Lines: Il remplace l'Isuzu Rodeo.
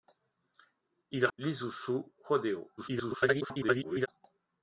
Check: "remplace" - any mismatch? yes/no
yes